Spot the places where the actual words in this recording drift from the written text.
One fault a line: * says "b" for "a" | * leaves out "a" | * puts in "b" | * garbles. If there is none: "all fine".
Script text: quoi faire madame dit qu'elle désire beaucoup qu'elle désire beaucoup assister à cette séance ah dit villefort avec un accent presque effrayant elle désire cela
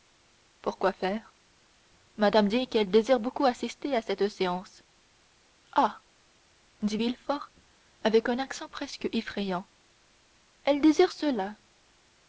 * leaves out "qu'elle désire beaucoup"